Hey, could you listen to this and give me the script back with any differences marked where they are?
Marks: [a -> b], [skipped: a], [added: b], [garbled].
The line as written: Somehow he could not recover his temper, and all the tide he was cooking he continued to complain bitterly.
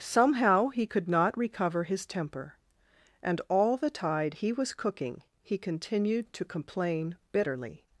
Somehow he could not recover his temper, and all the tide he was cooking he continued to complain bitterly.